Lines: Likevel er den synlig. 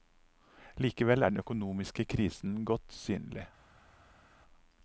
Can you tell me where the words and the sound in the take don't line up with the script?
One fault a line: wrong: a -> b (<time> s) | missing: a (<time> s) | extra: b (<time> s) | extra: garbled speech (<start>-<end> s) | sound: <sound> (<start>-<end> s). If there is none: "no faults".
extra: økonomiske krisen godt (1.4 s)